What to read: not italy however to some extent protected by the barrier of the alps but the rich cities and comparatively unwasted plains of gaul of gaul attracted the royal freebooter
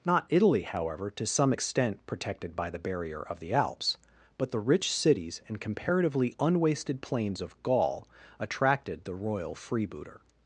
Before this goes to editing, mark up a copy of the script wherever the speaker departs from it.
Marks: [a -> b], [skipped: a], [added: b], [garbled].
not italy however to some extent protected by the barrier of the alps but the rich cities and comparatively unwasted plains of gaul [skipped: of gaul] attracted the royal freebooter